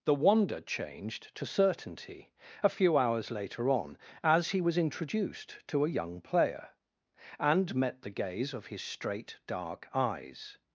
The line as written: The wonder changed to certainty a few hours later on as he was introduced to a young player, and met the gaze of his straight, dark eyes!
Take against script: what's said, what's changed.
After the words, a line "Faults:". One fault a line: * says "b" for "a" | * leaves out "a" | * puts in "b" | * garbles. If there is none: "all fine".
The wonder changed to certainty a few hours later on as he was introduced to a young player, and met the gaze of his straight, dark eyes!
Faults:
all fine